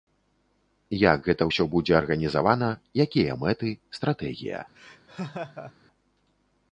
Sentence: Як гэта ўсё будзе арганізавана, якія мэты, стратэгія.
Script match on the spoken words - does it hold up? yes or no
yes